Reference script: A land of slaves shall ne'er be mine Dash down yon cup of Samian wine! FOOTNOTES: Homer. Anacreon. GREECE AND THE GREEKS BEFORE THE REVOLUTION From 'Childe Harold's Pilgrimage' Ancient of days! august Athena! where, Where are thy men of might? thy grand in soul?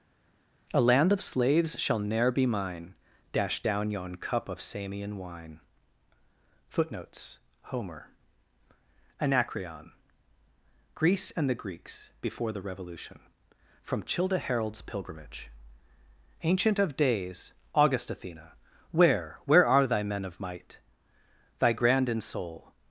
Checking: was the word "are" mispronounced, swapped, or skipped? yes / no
no